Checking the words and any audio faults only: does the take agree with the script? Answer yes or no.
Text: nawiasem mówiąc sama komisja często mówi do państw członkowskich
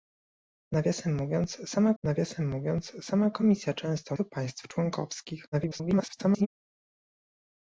no